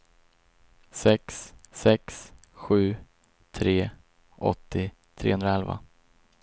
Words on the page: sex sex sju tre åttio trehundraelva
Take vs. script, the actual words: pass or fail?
pass